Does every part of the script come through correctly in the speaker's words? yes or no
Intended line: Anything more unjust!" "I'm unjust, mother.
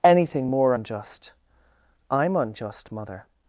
yes